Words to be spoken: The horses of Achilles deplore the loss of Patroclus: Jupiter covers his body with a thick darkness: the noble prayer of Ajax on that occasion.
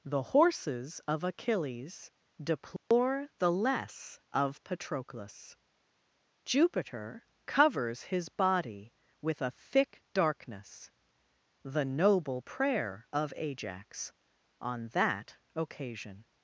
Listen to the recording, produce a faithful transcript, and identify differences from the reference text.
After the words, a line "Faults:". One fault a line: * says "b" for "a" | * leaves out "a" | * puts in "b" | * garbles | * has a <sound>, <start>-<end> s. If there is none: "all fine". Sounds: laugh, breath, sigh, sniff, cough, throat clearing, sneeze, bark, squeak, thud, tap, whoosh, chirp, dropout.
The horses of Achilles deplore the less of Patroclus: Jupiter covers his body with a thick darkness: the noble prayer of Ajax on that occasion.
Faults:
* has a dropout, 2.8-2.9 s
* says "less" for "loss"